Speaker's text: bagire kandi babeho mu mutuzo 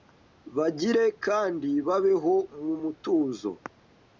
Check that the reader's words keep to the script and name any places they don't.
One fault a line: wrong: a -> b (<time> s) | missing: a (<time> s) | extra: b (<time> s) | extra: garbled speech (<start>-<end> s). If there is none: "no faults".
no faults